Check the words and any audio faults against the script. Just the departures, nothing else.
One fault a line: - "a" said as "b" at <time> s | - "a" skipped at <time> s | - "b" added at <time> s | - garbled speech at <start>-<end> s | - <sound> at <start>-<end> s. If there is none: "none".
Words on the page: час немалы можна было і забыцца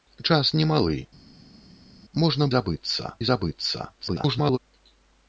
- "было" said as "забыцца" at 2.6 s
- garbled speech at 4.0-4.6 s